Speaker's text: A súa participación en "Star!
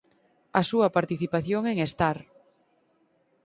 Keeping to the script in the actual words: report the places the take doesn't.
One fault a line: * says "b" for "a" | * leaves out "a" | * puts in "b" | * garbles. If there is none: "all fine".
all fine